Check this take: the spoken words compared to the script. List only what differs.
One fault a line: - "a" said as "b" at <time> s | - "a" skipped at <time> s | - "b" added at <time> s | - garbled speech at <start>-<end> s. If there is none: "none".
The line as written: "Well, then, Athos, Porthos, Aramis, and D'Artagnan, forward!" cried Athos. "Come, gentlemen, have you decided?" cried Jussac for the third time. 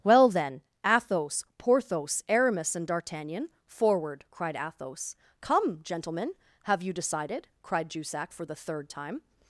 none